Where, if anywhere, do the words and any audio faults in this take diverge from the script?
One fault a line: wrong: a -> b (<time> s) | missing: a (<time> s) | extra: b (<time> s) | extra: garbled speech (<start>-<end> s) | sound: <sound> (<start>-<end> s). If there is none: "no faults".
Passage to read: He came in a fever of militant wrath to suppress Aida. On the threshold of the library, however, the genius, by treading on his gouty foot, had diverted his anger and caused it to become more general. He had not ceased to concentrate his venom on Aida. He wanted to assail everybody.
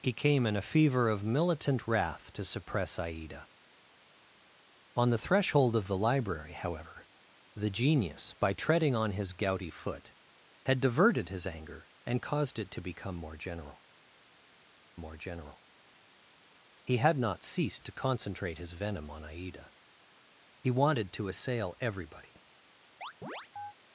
extra: more general (15.0 s)
sound: chirp (23.0-23.7 s)